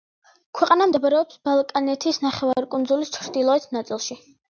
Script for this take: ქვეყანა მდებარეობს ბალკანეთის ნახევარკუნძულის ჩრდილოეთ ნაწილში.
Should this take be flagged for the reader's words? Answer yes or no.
no